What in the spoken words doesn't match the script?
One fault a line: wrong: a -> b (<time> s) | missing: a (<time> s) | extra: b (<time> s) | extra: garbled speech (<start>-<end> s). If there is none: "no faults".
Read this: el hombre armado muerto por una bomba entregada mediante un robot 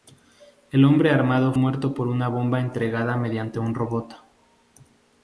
no faults